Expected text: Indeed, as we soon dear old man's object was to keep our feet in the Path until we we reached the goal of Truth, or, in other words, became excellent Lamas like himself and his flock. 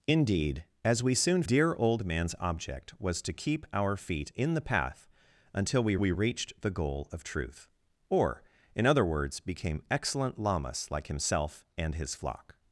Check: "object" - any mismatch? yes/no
no